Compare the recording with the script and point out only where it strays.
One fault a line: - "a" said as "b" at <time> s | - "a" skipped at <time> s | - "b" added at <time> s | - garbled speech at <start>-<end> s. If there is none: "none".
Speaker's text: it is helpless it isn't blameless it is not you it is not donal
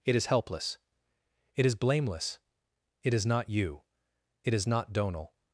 - "isn't" said as "is" at 1.6 s